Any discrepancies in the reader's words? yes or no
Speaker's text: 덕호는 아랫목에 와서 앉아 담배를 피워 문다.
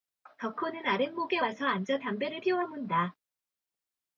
no